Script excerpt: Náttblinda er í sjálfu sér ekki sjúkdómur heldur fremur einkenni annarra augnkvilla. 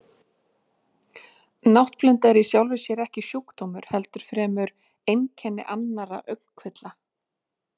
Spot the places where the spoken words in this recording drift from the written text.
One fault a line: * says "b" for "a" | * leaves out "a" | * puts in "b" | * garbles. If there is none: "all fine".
all fine